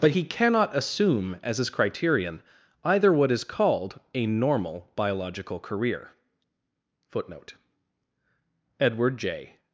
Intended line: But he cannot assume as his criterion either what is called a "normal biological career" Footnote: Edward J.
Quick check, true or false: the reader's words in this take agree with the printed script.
true